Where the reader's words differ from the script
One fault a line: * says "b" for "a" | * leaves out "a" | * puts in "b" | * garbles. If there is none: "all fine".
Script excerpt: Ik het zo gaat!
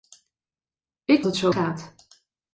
all fine